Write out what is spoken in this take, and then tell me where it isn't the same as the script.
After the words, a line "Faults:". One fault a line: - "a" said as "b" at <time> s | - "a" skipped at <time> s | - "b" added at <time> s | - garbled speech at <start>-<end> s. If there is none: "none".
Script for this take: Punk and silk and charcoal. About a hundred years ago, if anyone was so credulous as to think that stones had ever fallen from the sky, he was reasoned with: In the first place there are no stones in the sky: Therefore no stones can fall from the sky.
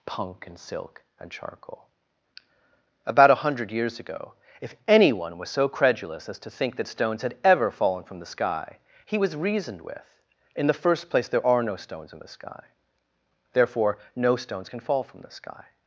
Punk and silk and charcoal. About a hundred years ago, if anyone was so credulous as to think that stones had ever fallen from the sky, he was reasoned with: In the first place there are no stones in the sky: Therefore no stones can fall from the sky.
Faults:
none